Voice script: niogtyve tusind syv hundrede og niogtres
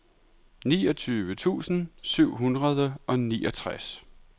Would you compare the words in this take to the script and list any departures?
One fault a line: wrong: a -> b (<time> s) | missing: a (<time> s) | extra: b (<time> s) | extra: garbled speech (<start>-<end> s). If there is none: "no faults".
no faults